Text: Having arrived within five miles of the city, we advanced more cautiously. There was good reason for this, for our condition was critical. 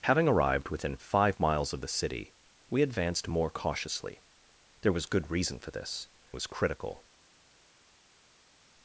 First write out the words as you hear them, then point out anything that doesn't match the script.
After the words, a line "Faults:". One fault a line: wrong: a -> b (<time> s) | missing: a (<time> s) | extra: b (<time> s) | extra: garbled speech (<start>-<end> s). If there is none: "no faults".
Having arrived within five miles of the city, we advanced more cautiously. There was good reason for this, was critical.
Faults:
missing: for our condition (6.1 s)